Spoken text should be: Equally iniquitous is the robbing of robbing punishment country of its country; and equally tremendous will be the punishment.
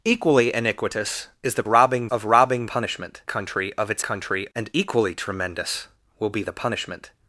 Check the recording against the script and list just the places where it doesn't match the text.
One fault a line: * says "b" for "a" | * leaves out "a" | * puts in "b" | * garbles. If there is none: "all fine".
all fine